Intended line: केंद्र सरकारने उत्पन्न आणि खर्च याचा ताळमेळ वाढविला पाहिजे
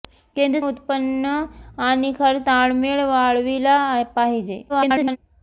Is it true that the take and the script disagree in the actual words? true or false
true